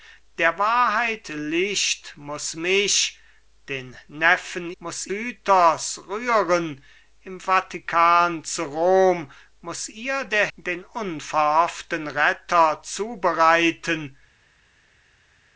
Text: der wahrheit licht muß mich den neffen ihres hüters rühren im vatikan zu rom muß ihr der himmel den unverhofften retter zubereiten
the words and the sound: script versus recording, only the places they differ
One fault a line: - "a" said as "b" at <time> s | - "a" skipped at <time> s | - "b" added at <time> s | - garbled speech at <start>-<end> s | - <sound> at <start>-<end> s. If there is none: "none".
- "ihres" said as "muß" at 4.8 s
- "himmel" skipped at 10.5 s